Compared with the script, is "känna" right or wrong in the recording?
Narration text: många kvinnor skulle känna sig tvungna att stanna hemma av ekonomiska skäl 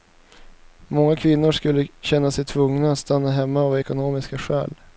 right